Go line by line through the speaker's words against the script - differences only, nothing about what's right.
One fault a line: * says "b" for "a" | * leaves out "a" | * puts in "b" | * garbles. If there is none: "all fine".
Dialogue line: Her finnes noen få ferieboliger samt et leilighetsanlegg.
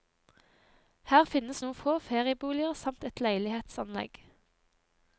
all fine